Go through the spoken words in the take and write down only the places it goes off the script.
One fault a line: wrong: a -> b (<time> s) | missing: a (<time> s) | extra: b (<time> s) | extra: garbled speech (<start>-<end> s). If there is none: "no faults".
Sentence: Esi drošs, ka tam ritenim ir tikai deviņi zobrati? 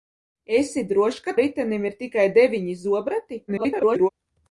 missing: tam (1.4 s)
extra: garbled speech (3.5-4.1 s)